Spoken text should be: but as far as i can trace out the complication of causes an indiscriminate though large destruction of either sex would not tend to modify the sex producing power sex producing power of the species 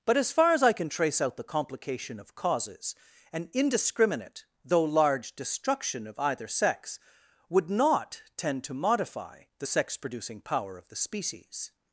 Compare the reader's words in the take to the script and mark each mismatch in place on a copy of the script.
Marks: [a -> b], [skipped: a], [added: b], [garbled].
but as far as i can trace out the complication of causes an indiscriminate though large destruction of either sex would not tend to modify the sex producing power [skipped: sex producing power] of the species